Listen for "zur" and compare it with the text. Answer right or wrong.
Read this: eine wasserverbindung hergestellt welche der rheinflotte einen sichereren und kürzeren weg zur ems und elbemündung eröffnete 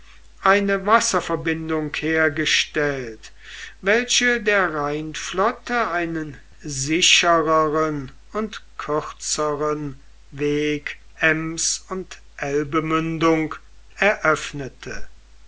wrong